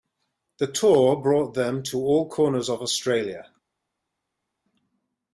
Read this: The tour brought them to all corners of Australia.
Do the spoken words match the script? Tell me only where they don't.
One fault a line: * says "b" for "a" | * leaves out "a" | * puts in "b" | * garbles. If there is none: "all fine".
all fine